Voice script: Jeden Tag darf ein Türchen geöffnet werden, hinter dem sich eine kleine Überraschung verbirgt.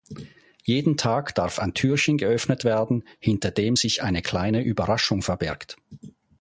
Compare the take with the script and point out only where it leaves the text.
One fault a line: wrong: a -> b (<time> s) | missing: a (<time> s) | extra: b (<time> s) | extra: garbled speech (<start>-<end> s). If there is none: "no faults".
no faults